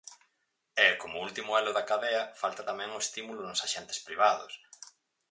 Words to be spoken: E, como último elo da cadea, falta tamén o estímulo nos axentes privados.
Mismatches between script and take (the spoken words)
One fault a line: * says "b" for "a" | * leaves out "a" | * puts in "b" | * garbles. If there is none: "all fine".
all fine